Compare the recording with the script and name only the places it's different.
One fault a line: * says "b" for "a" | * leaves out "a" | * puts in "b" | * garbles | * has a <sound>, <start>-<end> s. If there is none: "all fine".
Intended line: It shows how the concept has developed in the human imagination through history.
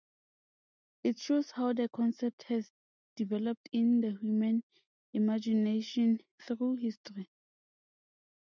all fine